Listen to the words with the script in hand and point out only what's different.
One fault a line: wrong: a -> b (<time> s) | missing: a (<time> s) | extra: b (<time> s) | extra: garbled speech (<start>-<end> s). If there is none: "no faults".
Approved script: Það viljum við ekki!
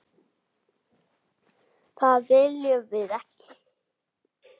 no faults